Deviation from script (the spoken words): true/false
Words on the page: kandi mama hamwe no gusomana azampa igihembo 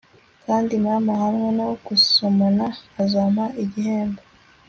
false